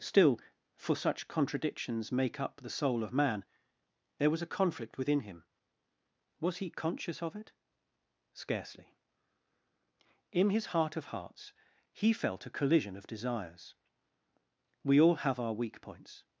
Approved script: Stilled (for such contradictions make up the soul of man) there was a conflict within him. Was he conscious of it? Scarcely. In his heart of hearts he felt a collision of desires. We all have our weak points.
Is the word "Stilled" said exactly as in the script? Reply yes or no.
no